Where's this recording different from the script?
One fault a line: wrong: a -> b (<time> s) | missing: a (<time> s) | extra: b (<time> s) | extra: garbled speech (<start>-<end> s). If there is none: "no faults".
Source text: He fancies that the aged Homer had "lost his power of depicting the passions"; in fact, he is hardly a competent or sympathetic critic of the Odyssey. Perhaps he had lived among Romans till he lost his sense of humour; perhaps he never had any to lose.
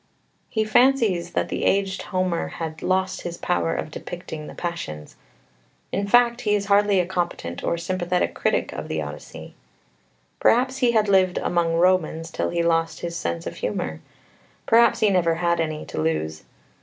no faults